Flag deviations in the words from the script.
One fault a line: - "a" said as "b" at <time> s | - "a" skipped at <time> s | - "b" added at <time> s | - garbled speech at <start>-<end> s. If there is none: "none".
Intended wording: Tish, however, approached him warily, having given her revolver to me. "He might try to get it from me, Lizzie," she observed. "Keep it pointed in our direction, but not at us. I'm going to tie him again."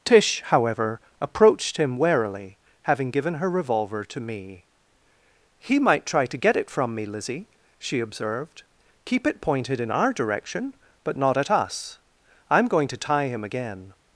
none